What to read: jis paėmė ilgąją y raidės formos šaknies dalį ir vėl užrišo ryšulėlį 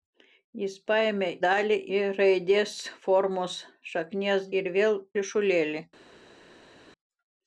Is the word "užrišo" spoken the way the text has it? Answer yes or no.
no